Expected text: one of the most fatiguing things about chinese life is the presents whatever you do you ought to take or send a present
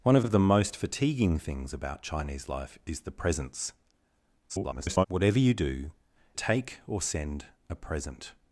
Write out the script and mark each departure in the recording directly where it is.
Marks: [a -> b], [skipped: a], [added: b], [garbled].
one of [added: of] the most fatiguing things about chinese life is the presents [garbled] whatever you do [skipped: you ought to] take or send a present